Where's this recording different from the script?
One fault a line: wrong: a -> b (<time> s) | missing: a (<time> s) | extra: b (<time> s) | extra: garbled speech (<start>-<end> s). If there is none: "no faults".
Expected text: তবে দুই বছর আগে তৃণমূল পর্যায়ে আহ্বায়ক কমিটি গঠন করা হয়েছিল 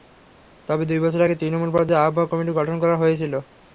no faults